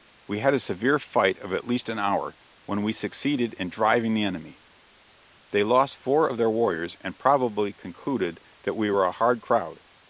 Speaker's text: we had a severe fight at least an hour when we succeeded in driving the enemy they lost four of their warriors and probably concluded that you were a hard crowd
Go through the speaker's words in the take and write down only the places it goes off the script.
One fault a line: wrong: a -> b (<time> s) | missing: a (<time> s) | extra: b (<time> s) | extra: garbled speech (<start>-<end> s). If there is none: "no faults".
extra: of (1.4 s)
wrong: you -> we (8.8 s)